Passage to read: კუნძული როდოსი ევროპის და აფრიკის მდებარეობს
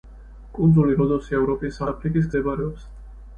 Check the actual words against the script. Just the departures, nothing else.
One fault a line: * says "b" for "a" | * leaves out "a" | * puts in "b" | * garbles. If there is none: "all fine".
all fine